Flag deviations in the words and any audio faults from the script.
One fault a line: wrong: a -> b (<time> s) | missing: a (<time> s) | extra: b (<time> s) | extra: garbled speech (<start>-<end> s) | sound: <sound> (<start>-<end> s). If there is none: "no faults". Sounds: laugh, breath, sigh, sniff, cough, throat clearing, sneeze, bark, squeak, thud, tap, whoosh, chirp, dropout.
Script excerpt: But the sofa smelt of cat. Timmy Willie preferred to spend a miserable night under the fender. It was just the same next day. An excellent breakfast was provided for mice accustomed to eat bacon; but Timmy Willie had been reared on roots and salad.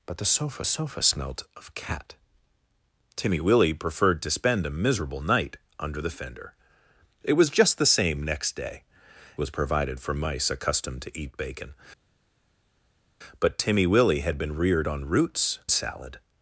extra: sofa (0.6 s)
missing: An excellent breakfast (8.8 s)
missing: and (15.6 s)